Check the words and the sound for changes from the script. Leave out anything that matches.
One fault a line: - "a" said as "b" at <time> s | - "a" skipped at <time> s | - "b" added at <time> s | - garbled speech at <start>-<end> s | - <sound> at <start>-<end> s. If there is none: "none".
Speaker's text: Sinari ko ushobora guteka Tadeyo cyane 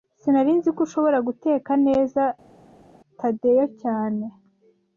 - "nzi" added at 0.6 s
- "neza" added at 1.9 s